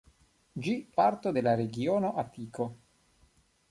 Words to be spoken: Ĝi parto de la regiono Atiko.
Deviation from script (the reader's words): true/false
false